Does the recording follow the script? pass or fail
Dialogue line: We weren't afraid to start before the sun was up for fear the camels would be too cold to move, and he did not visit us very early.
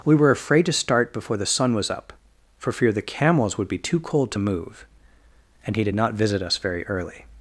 fail